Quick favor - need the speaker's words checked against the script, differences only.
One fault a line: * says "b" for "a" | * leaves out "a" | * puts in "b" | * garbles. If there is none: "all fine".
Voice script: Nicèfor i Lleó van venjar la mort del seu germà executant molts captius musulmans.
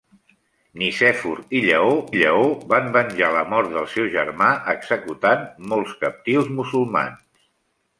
* puts in "Lleó"